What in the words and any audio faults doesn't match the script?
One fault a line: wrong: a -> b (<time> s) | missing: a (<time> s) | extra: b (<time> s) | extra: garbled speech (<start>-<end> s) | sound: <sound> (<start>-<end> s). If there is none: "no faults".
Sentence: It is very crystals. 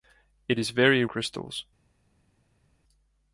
no faults